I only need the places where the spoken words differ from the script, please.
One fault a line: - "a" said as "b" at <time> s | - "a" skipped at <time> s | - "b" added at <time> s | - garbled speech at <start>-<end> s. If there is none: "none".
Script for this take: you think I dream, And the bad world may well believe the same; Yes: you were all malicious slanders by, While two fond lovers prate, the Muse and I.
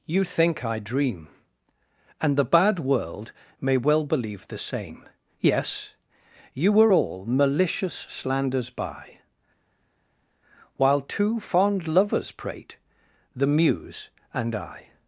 none